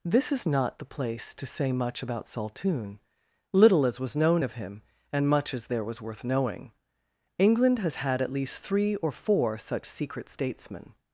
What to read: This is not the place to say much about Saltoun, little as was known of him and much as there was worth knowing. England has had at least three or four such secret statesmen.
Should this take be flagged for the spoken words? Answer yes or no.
no